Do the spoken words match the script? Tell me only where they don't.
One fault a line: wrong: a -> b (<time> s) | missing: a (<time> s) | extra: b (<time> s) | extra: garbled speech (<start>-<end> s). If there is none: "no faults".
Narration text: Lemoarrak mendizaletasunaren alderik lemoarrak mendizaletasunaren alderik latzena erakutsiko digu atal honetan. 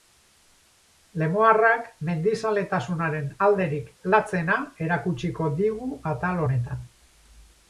missing: lemoarrak mendizaletasunaren alderik (3.9 s)